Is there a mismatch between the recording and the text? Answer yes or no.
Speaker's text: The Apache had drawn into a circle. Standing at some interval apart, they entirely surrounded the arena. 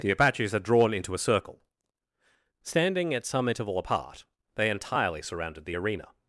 yes